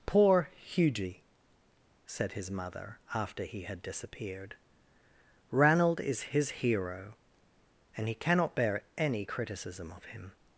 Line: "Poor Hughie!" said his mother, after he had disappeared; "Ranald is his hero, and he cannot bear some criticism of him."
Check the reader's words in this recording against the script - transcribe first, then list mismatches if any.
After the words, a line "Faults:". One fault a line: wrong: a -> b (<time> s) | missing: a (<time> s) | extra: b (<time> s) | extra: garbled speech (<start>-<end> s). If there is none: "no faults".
"Poor Hughie!" said his mother, after he had disappeared; "Ranald is his hero, and he cannot bear any criticism of him."
Faults:
wrong: some -> any (9.0 s)